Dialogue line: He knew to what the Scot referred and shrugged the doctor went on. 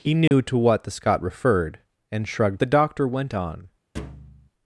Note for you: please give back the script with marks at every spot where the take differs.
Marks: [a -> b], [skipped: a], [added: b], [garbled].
He knew to what the Scot referred and shrugged the doctor went on.